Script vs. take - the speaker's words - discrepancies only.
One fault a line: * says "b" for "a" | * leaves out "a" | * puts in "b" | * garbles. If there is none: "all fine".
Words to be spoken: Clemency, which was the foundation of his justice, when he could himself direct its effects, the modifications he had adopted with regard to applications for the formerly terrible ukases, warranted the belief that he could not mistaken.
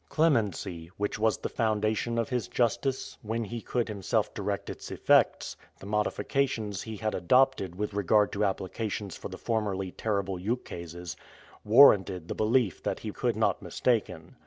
all fine